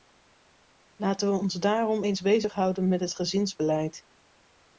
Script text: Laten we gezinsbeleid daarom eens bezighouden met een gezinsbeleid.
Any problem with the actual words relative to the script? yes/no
yes